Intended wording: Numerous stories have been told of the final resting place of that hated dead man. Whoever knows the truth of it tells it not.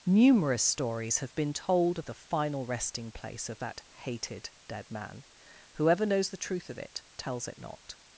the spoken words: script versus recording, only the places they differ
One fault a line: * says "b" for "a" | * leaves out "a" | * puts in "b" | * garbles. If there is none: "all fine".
all fine